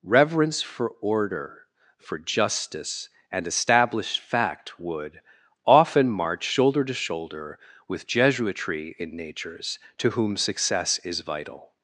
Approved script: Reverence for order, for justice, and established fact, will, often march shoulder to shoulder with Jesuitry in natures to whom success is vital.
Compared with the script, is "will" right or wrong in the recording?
wrong